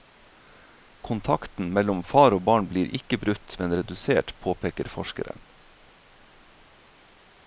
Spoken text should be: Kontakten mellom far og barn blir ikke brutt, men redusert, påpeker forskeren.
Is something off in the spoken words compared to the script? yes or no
no